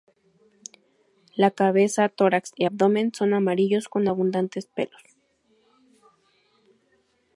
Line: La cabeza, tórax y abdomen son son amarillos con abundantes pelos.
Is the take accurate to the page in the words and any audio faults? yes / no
no